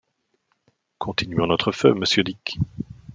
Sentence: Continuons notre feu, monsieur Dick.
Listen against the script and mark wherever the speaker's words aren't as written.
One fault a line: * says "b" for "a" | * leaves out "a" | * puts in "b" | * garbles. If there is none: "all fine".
all fine